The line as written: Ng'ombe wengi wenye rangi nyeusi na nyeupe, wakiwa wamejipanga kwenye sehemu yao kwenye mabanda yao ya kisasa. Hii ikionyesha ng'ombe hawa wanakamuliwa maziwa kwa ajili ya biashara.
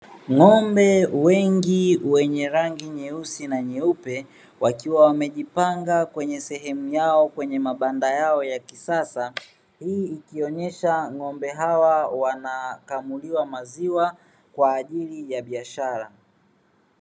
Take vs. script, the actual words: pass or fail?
pass